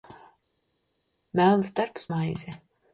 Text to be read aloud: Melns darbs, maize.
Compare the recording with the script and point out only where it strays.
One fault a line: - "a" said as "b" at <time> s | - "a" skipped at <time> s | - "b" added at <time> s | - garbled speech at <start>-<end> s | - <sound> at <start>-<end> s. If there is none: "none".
none